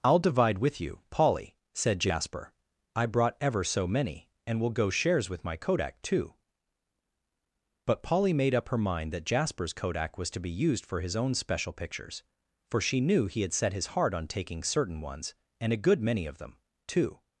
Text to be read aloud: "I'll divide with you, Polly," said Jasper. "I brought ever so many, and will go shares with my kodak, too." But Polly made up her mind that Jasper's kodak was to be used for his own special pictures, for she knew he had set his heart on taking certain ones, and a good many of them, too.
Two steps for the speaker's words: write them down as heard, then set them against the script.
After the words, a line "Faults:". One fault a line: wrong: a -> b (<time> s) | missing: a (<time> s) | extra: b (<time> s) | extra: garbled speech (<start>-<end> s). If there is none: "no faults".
"I'll divide with you, Polly," said Jasper. "I brought ever so many, and will go shares with my kodak, too." But Polly made up her mind that Jasper's kodak was to be used for his own special pictures, for she knew he had set his heart on taking certain ones, and a good many of them, too.
Faults:
no faults